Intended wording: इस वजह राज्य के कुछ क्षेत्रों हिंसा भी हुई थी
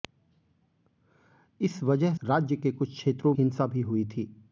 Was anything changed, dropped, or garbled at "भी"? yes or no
no